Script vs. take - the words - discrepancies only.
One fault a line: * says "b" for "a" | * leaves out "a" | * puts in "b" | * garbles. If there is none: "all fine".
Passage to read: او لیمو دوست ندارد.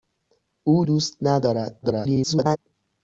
* leaves out "لیمو"
* garbles